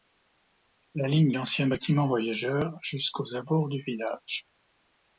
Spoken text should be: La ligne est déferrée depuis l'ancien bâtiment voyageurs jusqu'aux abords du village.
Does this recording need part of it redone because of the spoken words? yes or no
yes